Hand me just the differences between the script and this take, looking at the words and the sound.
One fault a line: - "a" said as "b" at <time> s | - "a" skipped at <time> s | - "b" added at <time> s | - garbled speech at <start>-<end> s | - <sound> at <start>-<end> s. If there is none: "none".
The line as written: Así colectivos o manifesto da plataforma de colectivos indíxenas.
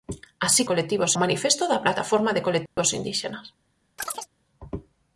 - dropout at 2.7-2.8 s
- chirp at 4.0-4.3 s